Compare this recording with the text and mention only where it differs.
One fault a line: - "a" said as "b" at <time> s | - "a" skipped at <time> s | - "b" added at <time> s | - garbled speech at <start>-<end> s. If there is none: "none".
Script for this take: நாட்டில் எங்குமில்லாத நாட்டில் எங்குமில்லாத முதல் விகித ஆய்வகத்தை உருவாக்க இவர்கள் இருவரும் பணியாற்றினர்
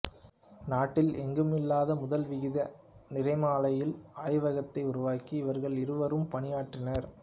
- "நாட்டில் எங்குமில்லாத" skipped at 2.0 s
- "நிறமாலையியல்" added at 3.1 s